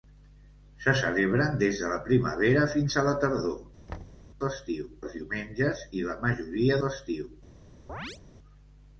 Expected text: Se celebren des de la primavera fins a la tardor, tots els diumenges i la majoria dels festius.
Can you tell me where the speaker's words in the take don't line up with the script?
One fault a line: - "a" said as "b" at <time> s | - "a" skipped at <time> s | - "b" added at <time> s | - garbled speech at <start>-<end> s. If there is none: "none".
- "tots" said as "festius" at 4.5 s
- "dels" skipped at 6.8 s